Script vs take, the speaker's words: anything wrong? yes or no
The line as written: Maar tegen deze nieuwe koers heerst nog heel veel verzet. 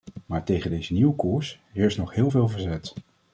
no